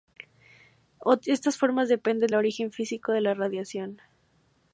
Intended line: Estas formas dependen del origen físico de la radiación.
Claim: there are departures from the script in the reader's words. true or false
true